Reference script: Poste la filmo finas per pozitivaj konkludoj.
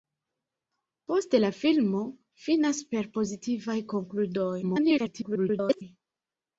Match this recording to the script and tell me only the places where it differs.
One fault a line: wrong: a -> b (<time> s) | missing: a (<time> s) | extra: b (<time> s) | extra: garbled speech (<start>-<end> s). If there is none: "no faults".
extra: garbled speech (4.6-5.8 s)